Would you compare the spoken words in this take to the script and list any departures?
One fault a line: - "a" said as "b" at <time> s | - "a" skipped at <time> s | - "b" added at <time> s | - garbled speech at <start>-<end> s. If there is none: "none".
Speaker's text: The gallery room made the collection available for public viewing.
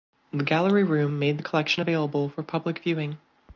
none